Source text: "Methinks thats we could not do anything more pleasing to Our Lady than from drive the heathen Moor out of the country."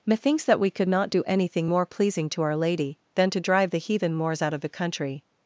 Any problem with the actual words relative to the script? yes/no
yes